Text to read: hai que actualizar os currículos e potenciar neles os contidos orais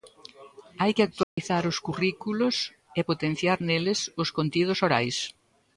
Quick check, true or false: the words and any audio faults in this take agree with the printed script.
false